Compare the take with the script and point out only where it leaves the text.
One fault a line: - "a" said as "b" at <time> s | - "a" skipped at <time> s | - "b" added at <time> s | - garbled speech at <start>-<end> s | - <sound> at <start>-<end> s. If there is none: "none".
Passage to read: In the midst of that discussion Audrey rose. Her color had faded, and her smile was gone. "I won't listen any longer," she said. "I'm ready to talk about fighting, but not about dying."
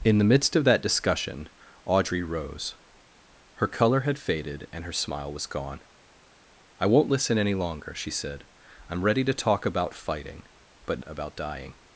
- "not" skipped at 11.0 s